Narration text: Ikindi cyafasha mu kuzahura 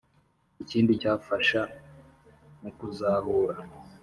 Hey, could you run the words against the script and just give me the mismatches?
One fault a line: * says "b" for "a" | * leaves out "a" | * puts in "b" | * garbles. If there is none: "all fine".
all fine